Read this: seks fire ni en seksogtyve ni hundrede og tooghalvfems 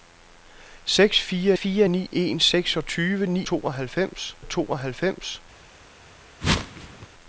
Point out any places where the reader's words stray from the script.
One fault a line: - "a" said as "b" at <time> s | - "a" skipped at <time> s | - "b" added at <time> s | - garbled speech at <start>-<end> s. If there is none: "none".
- "fire" added at 1.5 s
- "hundrede" said as "tooghalvfems" at 3.4 s